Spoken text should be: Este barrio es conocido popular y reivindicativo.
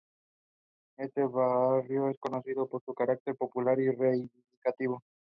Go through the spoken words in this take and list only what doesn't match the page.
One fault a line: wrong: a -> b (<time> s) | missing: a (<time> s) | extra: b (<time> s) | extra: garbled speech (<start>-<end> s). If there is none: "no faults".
extra: por su carácter (2.7 s)